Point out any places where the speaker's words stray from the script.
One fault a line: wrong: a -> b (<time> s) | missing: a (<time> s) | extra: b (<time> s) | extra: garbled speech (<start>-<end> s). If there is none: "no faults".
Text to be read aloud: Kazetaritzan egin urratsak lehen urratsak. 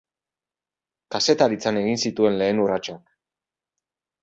wrong: urratsak -> zituen (2.1 s)